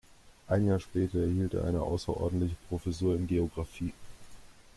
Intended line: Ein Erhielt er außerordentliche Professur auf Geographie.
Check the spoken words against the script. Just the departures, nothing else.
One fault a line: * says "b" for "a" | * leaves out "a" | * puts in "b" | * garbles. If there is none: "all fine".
* puts in "Jahr später"
* puts in "eine"
* says "in" for "auf"